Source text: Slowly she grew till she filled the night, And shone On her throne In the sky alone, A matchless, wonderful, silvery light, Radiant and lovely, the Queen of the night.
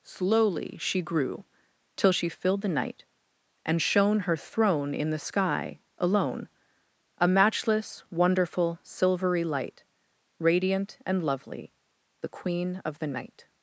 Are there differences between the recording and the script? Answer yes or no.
yes